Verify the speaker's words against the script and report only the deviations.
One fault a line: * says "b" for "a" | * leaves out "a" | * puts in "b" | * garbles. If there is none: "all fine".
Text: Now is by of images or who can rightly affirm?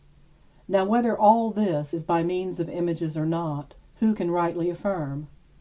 * puts in "whether all this"
* puts in "means"
* puts in "not"